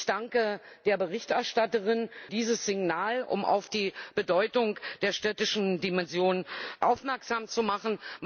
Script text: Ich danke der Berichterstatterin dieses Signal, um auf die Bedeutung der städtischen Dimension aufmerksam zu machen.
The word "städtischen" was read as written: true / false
true